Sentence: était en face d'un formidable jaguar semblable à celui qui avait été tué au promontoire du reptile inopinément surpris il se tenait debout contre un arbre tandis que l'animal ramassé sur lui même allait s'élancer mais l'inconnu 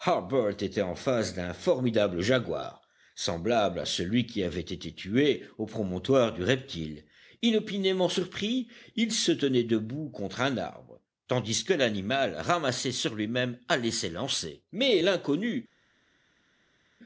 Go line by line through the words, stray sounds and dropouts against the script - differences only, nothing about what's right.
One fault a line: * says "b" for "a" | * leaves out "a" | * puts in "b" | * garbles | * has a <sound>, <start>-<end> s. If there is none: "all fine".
all fine